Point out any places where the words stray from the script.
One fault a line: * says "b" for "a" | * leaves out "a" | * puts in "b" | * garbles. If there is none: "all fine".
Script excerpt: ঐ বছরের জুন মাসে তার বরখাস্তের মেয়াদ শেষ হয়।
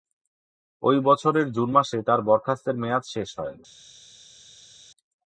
all fine